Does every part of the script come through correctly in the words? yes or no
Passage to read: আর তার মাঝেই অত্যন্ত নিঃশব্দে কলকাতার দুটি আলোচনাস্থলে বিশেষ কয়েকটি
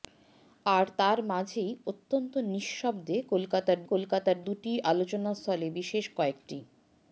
no